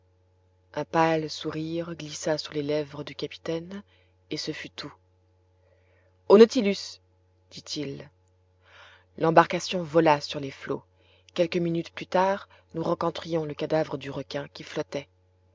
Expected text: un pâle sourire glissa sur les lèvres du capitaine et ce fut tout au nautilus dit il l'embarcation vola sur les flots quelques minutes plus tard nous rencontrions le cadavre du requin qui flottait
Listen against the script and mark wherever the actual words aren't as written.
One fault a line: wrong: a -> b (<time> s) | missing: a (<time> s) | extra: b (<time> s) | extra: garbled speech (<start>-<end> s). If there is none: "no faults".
no faults